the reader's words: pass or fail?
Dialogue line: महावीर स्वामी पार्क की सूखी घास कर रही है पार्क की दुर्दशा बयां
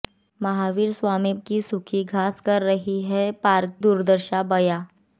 fail